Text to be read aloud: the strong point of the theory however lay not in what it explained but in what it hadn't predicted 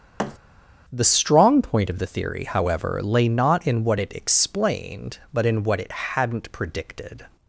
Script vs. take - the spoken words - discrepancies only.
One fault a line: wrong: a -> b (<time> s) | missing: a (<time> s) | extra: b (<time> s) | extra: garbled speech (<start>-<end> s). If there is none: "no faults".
no faults